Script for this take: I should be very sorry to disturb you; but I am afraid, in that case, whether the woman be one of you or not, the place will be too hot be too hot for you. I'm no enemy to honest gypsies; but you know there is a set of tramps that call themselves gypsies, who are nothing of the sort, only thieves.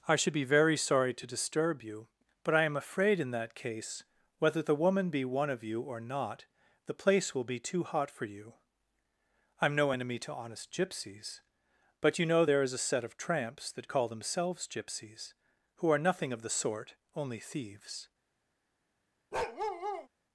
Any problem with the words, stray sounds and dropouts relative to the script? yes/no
yes